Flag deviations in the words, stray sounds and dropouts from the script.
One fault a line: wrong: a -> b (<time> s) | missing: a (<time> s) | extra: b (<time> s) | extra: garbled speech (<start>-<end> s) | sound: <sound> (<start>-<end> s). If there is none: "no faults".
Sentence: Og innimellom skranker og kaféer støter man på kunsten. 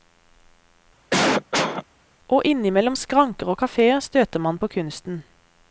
sound: cough (1.1-1.8 s)